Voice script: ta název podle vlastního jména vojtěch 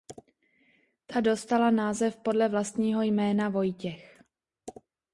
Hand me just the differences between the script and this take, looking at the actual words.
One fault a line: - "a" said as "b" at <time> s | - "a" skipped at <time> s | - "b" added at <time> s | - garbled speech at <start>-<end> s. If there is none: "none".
- "dostala" added at 1.2 s